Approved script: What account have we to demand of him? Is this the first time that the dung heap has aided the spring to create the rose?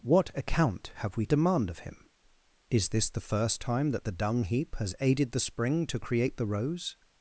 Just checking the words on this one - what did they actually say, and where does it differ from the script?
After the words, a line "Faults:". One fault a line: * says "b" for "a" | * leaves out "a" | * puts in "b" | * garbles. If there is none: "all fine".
What account have we demand of him? Is this the first time that the dung heap has aided the spring to create the rose?
Faults:
* leaves out "to"